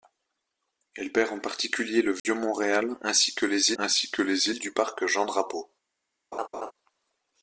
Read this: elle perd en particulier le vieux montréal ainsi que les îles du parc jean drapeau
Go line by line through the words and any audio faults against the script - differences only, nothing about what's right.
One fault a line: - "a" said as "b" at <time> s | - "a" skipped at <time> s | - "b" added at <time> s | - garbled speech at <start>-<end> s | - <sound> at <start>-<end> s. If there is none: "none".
- dropout at 2.2-2.2 s
- "ainsi que les" added at 3.7 s
- laugh at 6.3-6.7 s